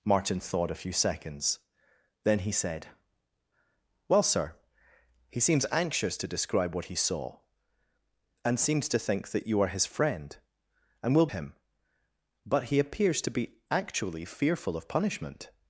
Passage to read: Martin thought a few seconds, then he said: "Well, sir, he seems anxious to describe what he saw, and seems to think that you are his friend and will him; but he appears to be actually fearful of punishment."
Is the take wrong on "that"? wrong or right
right